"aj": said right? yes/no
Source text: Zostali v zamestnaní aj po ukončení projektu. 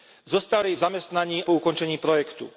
no